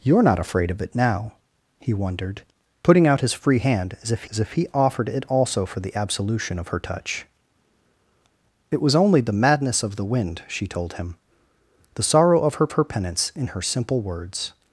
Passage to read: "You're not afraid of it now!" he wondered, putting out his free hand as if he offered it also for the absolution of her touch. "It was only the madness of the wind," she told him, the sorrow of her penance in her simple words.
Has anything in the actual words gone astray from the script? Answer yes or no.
yes